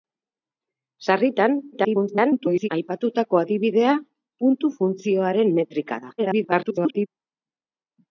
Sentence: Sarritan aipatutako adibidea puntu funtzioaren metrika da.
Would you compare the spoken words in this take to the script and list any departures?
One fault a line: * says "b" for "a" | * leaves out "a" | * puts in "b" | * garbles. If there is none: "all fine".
* garbles
* garbles